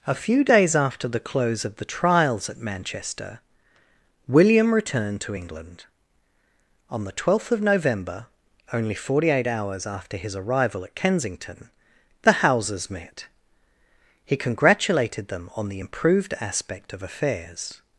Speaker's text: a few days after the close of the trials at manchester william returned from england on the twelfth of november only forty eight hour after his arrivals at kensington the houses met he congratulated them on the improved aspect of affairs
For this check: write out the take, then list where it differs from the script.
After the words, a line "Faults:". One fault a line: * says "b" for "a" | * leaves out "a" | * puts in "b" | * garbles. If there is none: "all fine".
a few days after the close of the trials at manchester william returned to england on the twelfth of november only forty eight hours after his arrival at kensington the houses met he congratulated them on the improved aspect of affairs
Faults:
* says "to" for "from"
* says "hours" for "hour"
* says "arrival" for "arrivals"